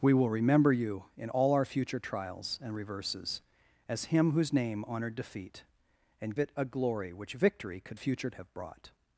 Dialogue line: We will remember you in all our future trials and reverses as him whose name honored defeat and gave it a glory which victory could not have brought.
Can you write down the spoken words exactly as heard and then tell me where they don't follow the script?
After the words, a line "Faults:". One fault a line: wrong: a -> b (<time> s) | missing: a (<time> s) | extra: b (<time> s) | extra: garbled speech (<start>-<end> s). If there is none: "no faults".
We will remember you in all our future trials and reverses as him whose name honored defeat and it a glory which victory could future have brought.
Faults:
missing: gave (6.3 s)
wrong: not -> future (7.9 s)